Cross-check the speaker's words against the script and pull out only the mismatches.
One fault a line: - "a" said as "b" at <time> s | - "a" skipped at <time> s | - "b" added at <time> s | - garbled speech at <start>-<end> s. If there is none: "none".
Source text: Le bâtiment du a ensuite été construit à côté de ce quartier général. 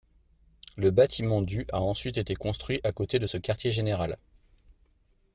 none